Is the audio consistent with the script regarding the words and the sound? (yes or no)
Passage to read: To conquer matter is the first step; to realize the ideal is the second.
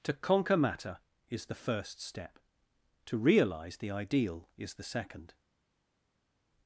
yes